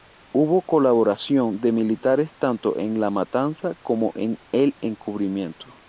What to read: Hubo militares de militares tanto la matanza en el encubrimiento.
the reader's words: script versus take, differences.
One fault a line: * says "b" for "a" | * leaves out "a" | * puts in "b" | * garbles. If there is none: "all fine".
* says "colaboración" for "militares"
* puts in "en"
* puts in "como"